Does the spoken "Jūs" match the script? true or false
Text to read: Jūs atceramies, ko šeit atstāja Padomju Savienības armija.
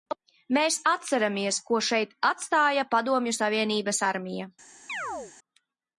false